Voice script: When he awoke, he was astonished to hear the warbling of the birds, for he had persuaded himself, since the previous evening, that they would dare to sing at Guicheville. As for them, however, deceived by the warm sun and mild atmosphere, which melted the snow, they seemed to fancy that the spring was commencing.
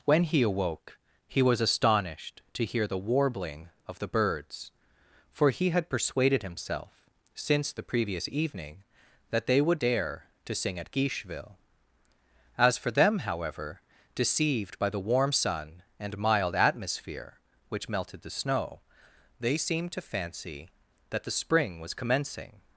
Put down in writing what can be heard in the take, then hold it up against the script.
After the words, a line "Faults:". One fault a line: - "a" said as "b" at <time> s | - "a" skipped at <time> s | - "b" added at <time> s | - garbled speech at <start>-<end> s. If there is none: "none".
When he awoke, he was astonished to hear the warbling of the birds, for he had persuaded himself, since the previous evening, that they would dare to sing at Guicheville. As for them, however, deceived by the warm sun and mild atmosphere, which melted the snow, they seemed to fancy that the spring was commencing.
Faults:
none